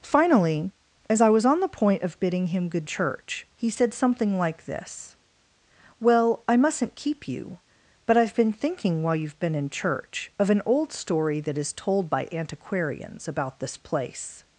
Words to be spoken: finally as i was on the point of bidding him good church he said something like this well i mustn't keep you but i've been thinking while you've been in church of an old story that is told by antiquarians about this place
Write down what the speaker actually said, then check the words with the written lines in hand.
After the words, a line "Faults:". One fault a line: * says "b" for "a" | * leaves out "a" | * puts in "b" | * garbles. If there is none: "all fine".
finally as i was on the point of bidding him good church he said something like this well i mustn't keep you but i've been thinking while you've been in church of an old story that is told by antiquarians about this place
Faults:
all fine